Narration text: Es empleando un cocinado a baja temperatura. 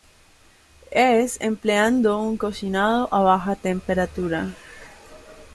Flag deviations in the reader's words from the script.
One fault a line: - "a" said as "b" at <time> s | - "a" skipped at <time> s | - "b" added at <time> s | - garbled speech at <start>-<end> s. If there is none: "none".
none